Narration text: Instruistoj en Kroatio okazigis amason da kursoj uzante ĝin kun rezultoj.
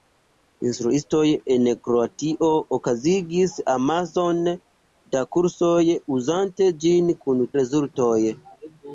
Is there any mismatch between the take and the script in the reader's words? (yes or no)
no